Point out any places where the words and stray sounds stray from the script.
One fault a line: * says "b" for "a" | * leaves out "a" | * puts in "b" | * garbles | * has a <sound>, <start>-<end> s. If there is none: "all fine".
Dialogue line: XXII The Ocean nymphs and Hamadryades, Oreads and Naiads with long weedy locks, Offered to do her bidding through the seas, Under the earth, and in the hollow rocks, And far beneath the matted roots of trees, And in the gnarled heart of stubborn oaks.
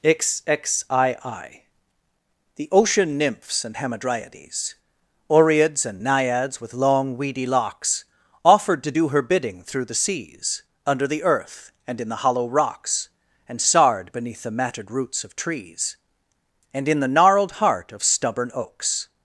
* says "sard" for "far"